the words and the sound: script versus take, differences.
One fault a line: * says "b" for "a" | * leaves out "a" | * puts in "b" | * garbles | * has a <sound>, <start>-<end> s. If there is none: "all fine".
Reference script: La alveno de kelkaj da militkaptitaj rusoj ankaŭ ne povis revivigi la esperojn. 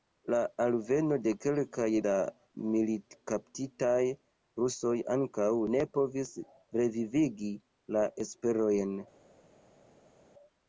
all fine